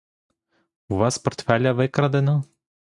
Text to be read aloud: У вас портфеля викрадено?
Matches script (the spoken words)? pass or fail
pass